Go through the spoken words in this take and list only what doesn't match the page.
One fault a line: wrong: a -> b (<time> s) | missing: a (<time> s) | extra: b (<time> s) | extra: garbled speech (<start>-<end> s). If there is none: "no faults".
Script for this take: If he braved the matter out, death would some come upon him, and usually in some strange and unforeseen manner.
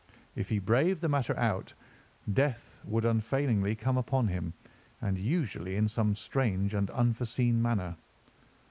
wrong: some -> unfailingly (3.0 s)